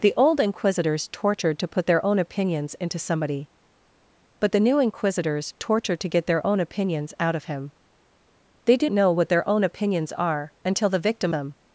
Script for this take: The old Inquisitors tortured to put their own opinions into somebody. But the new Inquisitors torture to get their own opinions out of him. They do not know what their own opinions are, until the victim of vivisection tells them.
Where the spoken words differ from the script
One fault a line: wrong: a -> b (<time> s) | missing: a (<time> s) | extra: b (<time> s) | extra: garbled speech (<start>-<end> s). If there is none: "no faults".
missing: not (8.9 s)
missing: of vivisection tells (11.3 s)